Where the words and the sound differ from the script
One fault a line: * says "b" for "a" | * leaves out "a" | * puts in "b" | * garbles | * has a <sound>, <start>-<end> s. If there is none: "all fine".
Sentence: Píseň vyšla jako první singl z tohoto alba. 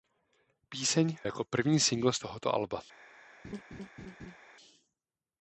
* leaves out "vyšla"
* has a laugh, 3.4-4.4 s